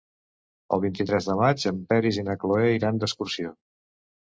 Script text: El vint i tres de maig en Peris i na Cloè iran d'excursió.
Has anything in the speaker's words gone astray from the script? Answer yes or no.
no